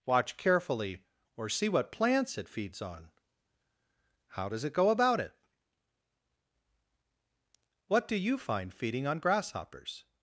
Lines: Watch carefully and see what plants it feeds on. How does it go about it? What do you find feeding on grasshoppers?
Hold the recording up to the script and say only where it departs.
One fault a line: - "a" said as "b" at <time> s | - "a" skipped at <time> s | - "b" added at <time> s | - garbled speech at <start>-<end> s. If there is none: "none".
- "and" said as "or" at 1.4 s